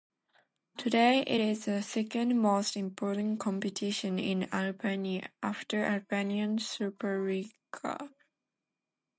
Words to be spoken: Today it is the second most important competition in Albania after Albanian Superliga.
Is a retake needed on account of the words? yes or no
no